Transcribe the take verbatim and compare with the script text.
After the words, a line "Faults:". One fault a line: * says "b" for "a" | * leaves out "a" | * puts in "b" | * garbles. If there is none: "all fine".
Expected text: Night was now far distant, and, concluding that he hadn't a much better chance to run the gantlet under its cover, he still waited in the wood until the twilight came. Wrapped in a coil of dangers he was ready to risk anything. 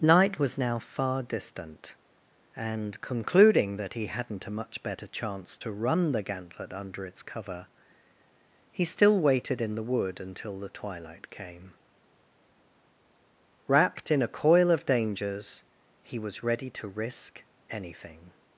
Night was now far distant, and, concluding that he hadn't a much better chance to run the gantlet under its cover, he still waited in the wood until the twilight came. Wrapped in a coil of dangers he was ready to risk anything.
Faults:
all fine